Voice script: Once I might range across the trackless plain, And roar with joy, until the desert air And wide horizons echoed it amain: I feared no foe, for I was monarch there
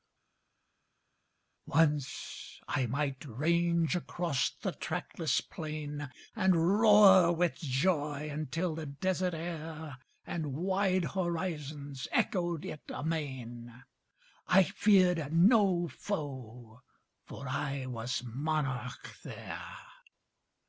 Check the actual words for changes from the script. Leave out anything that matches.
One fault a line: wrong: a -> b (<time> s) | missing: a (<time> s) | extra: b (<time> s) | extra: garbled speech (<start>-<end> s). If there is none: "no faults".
no faults